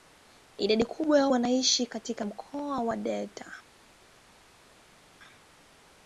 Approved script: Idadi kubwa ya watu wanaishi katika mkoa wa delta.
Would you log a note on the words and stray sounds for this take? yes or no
yes